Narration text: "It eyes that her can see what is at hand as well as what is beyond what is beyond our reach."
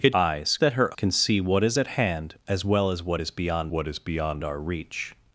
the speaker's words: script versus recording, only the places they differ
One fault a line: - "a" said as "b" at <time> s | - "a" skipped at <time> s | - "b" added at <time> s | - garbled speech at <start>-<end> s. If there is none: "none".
none